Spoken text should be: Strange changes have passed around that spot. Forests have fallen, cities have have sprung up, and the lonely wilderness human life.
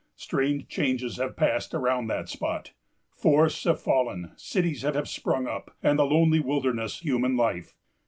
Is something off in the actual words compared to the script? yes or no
no